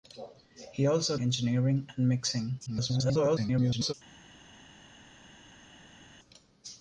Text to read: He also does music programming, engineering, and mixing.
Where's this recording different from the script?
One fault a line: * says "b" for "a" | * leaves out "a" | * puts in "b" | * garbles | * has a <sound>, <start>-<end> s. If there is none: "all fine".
* leaves out "does music programming"
* garbles